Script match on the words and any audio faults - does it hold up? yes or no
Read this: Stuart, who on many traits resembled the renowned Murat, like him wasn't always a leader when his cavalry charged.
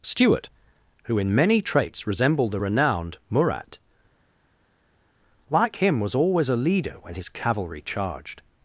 no